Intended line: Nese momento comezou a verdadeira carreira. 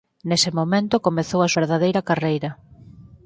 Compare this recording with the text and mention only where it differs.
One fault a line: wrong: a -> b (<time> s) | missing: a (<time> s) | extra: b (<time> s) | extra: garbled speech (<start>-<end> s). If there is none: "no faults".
no faults